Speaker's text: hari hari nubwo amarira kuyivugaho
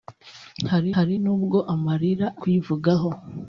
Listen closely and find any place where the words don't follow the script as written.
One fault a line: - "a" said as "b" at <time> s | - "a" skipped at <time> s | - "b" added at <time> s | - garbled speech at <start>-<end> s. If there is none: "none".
none